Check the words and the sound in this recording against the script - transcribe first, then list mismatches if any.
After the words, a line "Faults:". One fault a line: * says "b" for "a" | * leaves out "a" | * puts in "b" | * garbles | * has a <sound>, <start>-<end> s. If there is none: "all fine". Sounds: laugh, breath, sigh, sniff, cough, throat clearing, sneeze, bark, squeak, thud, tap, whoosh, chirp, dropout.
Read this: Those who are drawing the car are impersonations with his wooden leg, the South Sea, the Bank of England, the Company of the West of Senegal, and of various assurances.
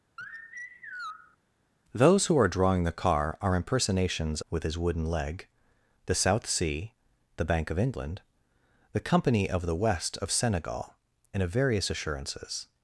Those who are drawing the car are impersonations with his wooden leg, the South Sea, the Bank of England, the Company of the West of Senegal, and of various assurances.
Faults:
* has a sigh, 0.2-1.4 s